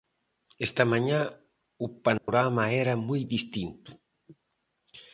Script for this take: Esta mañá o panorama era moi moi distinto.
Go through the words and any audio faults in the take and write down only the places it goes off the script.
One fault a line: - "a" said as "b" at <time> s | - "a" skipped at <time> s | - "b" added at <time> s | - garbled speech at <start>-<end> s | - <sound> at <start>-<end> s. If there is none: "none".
- dropout at 2.2-2.3 s
- "moi" skipped at 3.2 s